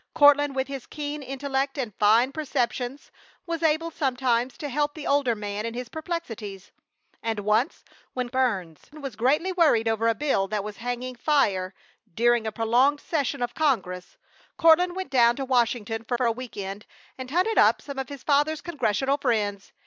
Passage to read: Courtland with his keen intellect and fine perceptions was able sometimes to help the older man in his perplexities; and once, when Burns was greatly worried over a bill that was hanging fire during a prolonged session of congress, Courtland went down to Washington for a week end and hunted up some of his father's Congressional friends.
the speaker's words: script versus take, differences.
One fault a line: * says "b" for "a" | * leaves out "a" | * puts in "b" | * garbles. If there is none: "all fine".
* puts in "for"